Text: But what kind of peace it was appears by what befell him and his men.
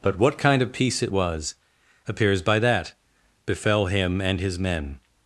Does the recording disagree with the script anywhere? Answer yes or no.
yes